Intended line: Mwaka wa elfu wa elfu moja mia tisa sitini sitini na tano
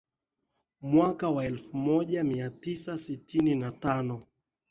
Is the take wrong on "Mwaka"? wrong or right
right